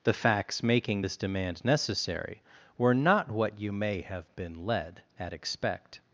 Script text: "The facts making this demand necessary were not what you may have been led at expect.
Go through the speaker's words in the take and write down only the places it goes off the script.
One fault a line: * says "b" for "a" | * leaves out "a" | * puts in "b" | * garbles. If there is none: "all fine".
all fine